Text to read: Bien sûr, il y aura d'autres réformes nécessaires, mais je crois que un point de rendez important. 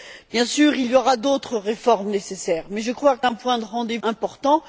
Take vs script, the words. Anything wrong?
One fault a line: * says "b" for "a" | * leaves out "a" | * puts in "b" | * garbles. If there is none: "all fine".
all fine